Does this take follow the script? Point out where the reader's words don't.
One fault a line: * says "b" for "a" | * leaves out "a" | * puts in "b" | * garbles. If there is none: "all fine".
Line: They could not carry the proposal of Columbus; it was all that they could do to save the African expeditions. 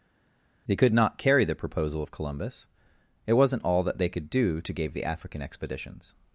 * says "wasn't" for "was"
* says "gave" for "save"